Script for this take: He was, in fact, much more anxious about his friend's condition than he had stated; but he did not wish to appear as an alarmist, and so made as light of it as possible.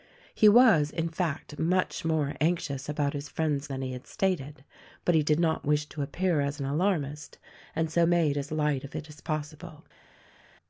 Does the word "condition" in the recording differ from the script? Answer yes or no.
yes